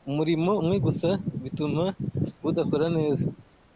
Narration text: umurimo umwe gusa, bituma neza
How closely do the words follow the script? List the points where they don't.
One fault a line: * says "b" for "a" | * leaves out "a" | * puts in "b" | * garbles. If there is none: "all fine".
* puts in "budakora"